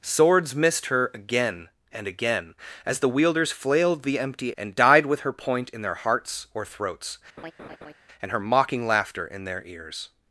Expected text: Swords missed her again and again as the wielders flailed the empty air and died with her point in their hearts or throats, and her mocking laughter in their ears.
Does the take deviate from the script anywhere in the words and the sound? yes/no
yes